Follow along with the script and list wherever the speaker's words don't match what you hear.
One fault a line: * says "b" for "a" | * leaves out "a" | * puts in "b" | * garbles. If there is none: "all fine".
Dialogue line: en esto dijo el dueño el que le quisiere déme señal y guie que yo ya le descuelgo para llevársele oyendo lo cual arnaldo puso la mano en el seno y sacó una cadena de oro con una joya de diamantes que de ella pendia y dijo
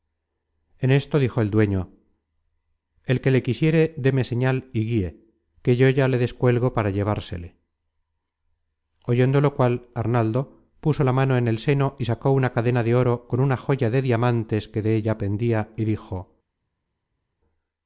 all fine